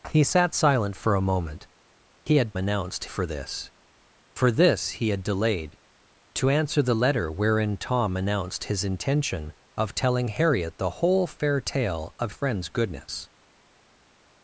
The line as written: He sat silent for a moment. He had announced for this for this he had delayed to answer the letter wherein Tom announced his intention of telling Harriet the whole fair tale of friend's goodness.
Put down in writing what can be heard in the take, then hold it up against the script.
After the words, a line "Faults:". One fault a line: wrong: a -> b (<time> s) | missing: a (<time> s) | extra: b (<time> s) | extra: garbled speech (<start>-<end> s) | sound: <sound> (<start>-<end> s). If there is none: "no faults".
He sat silent for a moment. He had announced for this for this he had delayed to answer the letter wherein Tom announced his intention of telling Harriet the whole fair tale of friend's goodness.
Faults:
no faults